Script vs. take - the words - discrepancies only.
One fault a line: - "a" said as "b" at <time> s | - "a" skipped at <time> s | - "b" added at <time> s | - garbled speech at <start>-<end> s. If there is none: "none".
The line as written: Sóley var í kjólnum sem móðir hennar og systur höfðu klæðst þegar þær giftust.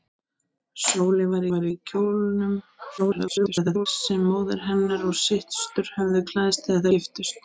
- "var" added at 1.5 s
- garbled speech at 3.0-3.9 s
- "þær" skipped at 6.9 s